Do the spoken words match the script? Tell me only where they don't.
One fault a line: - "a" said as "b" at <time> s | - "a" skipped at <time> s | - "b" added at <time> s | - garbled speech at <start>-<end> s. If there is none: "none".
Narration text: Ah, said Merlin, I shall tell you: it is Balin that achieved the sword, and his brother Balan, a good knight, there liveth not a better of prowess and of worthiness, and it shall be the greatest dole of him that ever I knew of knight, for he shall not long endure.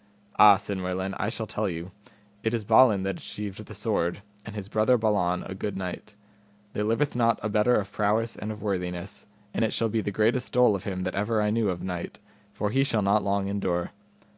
none